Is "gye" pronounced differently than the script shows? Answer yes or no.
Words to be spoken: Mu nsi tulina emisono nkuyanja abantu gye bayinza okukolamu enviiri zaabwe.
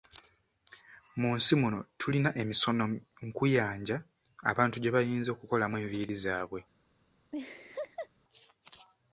no